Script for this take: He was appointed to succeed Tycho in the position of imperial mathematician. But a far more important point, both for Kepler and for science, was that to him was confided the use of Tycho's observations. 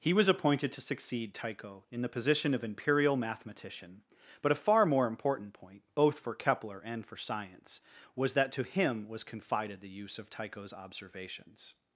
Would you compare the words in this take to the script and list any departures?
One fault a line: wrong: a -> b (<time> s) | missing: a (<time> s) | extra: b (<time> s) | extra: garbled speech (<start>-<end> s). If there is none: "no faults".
no faults